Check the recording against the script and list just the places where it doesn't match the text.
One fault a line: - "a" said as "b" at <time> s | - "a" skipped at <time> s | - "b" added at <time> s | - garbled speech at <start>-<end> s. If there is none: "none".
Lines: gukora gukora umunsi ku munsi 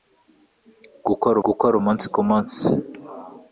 none